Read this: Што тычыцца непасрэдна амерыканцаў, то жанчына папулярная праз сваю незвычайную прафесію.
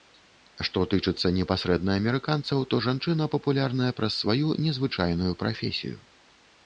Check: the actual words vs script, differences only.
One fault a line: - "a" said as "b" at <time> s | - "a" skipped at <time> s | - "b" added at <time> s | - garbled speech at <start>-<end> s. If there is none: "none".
none